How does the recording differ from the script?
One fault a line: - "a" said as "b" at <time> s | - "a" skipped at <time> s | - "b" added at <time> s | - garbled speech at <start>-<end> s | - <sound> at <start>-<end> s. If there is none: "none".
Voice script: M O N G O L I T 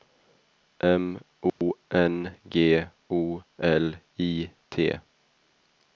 - dropout at 1.5-1.6 s